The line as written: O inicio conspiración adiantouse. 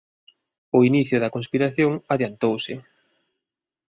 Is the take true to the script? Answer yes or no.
no